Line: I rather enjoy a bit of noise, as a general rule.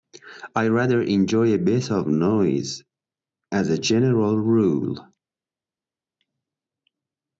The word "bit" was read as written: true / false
true